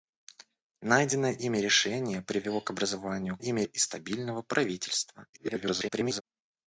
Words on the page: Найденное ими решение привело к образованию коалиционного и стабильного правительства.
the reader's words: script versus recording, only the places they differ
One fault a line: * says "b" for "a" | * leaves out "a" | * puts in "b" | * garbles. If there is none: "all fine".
* says "ими" for "коалиционного"
* garbles